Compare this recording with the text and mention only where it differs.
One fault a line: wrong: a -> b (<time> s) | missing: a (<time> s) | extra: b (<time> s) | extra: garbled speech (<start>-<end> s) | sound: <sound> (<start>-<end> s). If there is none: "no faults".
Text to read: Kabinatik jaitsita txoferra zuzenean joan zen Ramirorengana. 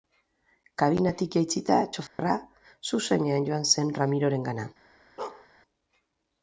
sound: dropout (2.1-2.2 s)
sound: bark (5.2-5.5 s)